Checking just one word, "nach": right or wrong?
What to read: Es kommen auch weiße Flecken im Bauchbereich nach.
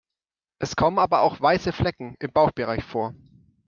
wrong